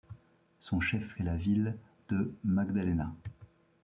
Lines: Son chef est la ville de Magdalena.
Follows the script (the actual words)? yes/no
yes